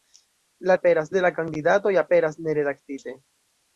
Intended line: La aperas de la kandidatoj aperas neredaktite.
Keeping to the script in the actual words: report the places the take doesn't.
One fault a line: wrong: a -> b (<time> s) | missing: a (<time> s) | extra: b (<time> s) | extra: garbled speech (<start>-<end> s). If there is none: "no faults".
no faults